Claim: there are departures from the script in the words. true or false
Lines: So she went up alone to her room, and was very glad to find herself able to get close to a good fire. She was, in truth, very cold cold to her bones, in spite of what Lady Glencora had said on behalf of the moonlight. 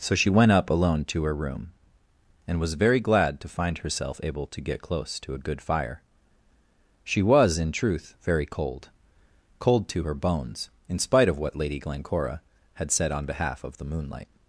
false